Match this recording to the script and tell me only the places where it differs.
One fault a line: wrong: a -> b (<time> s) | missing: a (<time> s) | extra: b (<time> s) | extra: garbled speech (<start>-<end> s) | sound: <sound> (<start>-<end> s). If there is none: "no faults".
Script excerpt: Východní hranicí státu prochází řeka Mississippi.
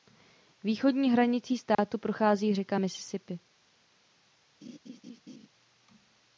sound: dropout (1.7-1.8 s)
sound: laugh (4.6-5.5 s)